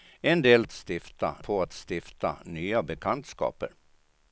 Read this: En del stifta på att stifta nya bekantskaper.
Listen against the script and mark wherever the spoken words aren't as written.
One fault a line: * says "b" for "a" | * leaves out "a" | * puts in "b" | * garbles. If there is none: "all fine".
all fine